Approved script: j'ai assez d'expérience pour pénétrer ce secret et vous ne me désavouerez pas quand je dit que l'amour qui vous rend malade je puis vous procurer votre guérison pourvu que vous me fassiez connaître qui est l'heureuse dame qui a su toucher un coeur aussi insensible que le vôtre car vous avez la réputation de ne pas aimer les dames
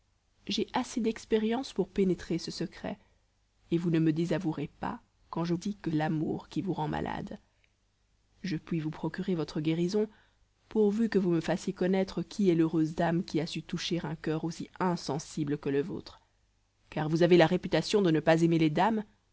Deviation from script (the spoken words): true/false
false